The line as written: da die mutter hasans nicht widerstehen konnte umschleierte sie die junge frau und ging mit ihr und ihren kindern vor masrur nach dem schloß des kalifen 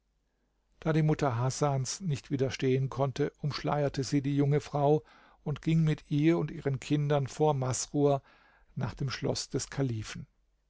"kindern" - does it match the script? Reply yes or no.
yes